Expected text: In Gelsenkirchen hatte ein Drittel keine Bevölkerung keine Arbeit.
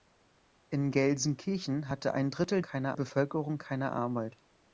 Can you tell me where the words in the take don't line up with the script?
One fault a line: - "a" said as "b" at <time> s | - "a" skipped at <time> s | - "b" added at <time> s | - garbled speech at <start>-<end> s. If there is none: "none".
none